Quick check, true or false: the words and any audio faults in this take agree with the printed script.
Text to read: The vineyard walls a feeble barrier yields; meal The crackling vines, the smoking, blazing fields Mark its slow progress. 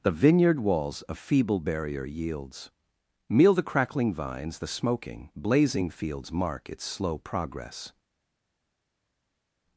true